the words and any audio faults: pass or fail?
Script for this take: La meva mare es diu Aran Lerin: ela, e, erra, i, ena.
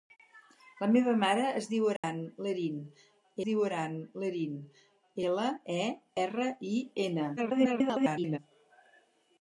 fail